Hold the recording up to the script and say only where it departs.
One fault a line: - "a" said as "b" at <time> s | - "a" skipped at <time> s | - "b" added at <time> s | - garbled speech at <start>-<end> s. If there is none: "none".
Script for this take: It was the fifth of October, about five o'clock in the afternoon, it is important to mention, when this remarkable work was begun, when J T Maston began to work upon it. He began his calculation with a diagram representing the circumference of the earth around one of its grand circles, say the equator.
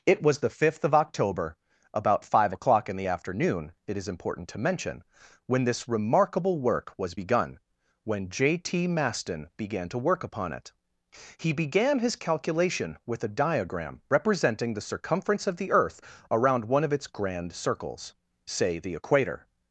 none